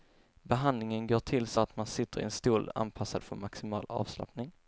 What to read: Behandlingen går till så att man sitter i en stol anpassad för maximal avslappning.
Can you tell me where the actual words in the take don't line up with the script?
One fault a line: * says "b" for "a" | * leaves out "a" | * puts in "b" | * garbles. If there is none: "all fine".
all fine